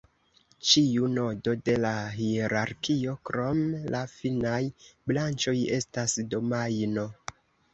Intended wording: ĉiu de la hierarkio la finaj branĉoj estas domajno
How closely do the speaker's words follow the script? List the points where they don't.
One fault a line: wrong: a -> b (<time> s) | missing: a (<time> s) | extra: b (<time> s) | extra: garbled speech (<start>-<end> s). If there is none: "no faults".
extra: nodo (1.2 s)
extra: krom (3.3 s)